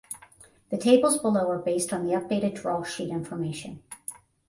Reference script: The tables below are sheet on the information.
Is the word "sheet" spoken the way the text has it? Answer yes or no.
no